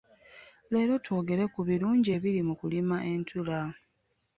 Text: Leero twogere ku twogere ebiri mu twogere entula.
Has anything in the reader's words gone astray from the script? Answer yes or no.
yes